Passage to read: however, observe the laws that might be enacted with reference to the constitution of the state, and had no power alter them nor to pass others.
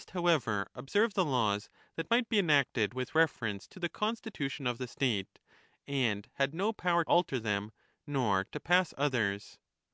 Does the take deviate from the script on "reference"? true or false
false